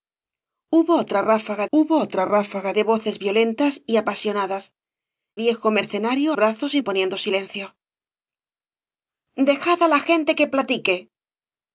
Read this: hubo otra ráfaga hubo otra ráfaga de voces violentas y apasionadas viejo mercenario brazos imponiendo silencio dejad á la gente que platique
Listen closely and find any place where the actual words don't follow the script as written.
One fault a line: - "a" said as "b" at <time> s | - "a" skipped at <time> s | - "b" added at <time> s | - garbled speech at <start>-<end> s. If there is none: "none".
none